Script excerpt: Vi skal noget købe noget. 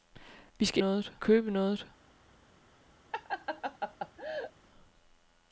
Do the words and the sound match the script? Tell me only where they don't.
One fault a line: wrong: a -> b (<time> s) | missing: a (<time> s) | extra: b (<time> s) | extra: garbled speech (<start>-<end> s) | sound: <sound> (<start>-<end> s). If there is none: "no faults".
sound: laugh (3.1-4.5 s)